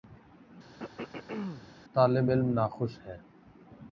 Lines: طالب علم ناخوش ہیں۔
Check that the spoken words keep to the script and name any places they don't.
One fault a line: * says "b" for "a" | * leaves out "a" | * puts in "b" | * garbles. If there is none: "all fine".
all fine